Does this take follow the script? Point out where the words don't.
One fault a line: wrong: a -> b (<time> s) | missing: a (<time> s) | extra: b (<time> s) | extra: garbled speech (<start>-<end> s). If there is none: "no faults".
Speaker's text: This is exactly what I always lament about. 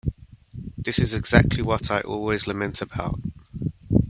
no faults